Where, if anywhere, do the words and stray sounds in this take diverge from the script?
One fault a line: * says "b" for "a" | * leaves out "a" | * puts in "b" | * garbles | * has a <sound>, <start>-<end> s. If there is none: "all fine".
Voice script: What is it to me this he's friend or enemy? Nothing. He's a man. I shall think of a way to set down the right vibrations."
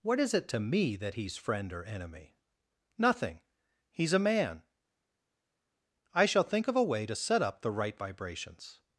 * says "that" for "this"
* says "up" for "down"